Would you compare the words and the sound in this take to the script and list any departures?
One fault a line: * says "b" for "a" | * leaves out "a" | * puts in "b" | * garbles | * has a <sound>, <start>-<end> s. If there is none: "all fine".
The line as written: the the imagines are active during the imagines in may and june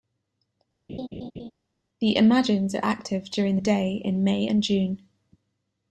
* has a laugh, 0.9-1.5 s
* leaves out "the"
* says "day" for "imagines"